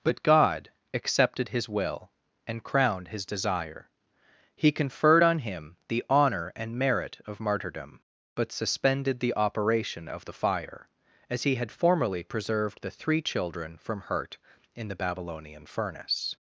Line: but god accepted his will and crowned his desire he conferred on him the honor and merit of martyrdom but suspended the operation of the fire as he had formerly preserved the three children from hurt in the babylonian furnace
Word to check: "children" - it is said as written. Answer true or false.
true